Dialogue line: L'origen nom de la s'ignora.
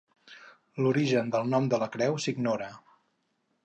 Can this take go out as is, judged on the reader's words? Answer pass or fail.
fail